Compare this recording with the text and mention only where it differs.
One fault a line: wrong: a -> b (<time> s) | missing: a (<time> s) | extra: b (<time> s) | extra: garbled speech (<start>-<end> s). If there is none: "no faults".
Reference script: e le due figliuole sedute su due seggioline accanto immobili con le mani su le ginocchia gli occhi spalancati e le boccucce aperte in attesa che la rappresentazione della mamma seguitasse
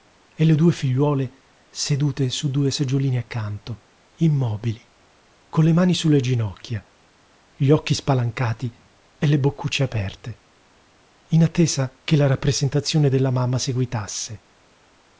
no faults